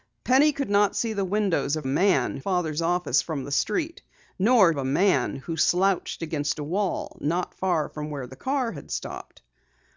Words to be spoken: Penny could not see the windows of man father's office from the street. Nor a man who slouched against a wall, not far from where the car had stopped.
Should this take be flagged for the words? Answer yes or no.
no